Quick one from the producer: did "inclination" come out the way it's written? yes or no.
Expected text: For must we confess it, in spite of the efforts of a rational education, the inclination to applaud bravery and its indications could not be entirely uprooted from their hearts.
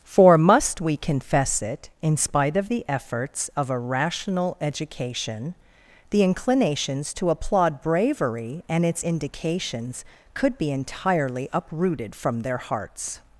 no